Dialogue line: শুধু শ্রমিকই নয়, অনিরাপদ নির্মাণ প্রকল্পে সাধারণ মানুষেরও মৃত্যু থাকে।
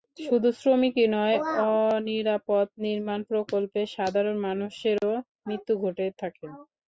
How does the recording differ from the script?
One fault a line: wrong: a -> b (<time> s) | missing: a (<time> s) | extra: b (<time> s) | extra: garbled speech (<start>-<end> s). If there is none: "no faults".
extra: ঘটে (5.8 s)